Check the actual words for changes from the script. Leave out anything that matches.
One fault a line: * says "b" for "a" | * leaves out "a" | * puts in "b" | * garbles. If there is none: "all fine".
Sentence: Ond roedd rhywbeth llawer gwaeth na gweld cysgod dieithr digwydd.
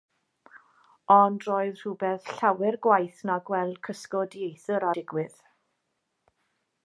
all fine